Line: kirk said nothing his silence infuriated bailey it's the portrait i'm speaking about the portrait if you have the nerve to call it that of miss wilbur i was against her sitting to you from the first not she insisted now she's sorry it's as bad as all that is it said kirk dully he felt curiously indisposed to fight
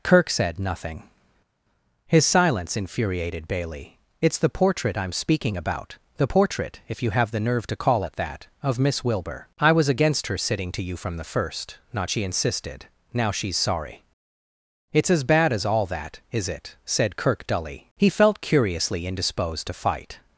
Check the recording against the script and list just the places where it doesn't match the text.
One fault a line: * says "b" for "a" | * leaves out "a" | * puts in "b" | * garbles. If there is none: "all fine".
all fine